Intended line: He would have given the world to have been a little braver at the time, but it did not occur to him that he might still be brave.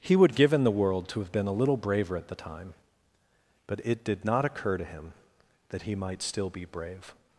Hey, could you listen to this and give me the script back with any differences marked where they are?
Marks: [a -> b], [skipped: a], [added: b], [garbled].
He would [have given -> give in] the world to have been a little braver at the time, but it did not occur to him that he might still be brave.